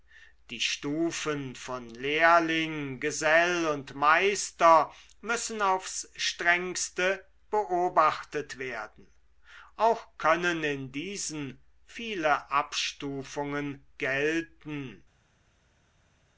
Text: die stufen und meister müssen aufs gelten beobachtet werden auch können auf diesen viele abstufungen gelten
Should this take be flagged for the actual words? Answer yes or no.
yes